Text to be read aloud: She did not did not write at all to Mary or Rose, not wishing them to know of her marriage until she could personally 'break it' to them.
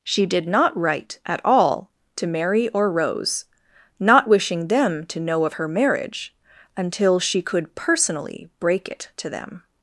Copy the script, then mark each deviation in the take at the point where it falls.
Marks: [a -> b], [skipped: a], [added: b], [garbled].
She did not [skipped: did not] write at all to Mary or Rose, not wishing them to know of her marriage until she could personally 'break it' to them.